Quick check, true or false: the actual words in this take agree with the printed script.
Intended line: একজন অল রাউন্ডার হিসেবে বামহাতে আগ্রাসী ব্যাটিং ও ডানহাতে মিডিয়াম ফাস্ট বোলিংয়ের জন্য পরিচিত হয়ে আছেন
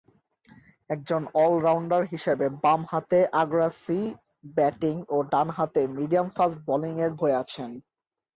false